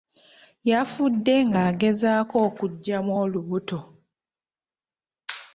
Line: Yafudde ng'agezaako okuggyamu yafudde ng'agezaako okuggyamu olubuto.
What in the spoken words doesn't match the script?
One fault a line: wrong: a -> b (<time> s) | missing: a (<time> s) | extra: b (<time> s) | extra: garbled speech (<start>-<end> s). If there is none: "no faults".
missing: yafudde ng'agezaako okuggyamu (3.1 s)